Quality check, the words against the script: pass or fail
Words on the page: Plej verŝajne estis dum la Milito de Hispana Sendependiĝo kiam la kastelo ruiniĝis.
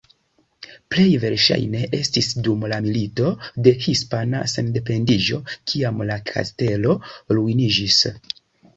pass